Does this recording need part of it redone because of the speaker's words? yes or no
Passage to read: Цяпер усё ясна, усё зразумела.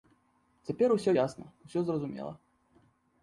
no